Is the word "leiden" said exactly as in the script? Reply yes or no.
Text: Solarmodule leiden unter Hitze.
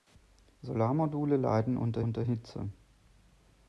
yes